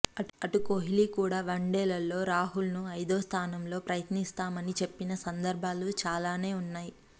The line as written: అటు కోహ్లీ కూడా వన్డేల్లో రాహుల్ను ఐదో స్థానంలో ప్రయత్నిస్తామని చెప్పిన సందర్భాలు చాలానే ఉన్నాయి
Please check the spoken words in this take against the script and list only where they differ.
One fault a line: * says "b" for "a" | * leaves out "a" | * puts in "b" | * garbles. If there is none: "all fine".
all fine